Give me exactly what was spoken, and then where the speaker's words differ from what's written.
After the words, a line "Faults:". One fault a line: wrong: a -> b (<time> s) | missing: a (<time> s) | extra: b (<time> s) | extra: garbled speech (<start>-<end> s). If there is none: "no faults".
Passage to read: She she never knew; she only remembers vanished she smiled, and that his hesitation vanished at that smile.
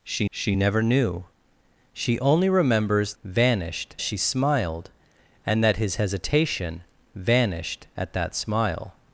She she never knew; she only remembers vanished she smiled, and that his hesitation vanished at that smile.
Faults:
no faults